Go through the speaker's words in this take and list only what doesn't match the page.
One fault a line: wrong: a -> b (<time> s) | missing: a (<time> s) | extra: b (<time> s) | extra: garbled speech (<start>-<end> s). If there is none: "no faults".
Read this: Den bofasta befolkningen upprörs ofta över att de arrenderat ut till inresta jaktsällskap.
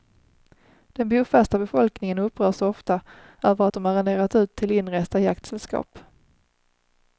no faults